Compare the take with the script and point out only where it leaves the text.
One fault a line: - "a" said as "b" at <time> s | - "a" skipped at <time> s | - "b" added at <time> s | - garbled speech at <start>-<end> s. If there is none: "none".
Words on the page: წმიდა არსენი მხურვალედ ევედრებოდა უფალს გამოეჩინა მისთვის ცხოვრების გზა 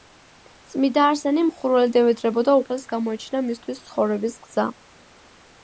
none